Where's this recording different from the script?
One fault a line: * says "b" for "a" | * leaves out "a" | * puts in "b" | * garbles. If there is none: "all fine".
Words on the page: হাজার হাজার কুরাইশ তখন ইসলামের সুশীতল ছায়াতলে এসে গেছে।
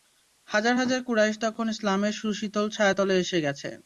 all fine